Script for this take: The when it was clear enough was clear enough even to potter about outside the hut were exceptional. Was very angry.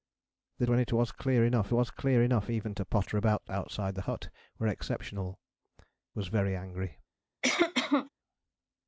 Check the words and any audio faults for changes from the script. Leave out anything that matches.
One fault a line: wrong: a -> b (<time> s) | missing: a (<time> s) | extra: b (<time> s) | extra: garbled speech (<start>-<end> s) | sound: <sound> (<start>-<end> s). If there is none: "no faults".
sound: cough (7.4-8.1 s)